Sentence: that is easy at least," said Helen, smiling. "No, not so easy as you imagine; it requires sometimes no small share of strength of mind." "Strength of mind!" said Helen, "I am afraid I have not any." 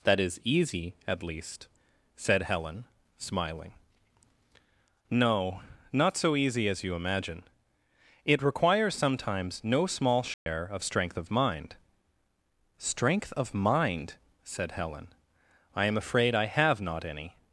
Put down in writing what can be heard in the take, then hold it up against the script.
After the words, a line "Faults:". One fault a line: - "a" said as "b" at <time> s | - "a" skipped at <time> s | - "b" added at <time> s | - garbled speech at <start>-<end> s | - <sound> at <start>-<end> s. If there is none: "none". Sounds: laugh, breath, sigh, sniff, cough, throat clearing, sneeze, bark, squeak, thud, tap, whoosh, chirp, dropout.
that is easy at least," said Helen, smiling. "No, not so easy as you imagine; it requires sometimes no small share of strength of mind." "Strength of mind!" said Helen, "I am afraid I have not any."
Faults:
- dropout at 10.3-10.5 s